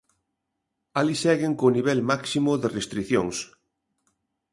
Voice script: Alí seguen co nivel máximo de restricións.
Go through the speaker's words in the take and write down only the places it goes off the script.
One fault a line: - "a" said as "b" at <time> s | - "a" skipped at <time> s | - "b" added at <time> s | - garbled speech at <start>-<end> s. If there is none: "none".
none